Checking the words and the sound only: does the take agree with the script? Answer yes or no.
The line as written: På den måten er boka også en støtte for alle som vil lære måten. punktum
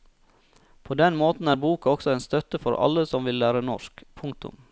no